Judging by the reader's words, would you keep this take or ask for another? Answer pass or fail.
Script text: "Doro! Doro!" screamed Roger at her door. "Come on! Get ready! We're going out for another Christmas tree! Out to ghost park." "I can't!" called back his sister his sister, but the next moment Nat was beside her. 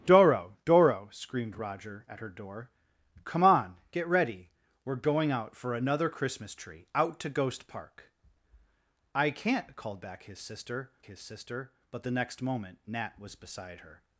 pass